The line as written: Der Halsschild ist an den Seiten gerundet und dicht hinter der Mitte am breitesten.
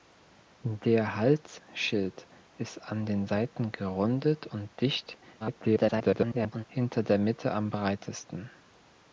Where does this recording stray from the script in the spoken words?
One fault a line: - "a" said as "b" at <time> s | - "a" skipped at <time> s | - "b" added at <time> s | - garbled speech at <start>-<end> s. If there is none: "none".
- garbled speech at 5.4-6.6 s